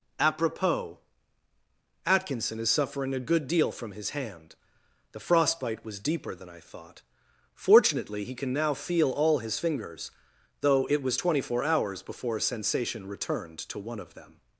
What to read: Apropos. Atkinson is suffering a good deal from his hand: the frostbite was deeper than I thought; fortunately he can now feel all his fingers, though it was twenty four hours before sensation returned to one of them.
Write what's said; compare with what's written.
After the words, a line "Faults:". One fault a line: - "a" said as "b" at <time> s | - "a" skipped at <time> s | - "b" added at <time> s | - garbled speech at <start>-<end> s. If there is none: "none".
Apropos. Atkinson is suffering a good deal from his hand: the frostbite was deeper than I thought; fortunately he can now feel all his fingers, though it was twenty four hours before sensation returned to one of them.
Faults:
none